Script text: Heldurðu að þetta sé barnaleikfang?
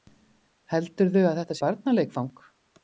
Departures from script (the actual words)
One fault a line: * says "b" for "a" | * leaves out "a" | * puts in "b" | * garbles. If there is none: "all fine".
* leaves out "sé"